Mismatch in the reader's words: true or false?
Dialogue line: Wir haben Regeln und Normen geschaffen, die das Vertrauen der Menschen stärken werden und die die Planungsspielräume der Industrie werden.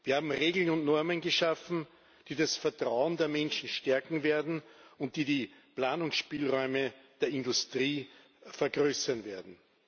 true